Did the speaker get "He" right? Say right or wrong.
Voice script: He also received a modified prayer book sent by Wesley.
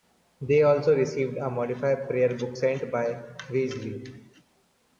wrong